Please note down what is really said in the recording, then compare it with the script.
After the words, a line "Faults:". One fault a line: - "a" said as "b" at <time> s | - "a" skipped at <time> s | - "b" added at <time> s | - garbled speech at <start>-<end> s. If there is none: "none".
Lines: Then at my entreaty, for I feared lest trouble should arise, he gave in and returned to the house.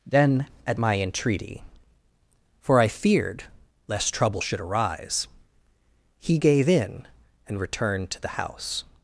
Then at my entreaty, for I feared lest trouble should arise, he gave in and returned to the house.
Faults:
none